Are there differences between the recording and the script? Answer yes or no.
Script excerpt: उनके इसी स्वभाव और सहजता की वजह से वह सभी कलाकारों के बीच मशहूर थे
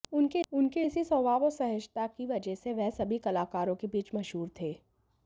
yes